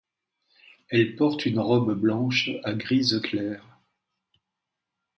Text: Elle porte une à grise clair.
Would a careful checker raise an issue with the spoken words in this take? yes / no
yes